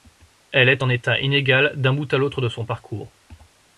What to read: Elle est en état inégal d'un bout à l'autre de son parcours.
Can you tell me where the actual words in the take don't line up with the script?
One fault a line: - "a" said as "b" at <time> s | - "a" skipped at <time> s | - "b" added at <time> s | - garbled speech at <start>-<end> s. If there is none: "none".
none